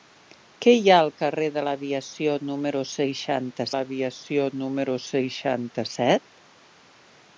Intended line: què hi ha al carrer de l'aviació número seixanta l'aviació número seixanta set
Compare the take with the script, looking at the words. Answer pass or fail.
pass